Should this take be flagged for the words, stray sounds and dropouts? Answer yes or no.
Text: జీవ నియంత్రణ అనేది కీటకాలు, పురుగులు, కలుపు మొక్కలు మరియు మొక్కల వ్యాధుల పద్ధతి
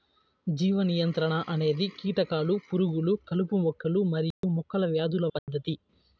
yes